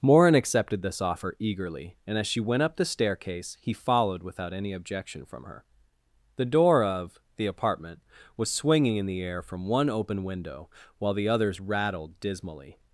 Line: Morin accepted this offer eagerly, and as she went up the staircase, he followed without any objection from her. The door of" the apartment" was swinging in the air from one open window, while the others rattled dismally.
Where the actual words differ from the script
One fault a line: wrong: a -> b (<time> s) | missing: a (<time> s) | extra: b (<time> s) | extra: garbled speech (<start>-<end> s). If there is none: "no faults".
no faults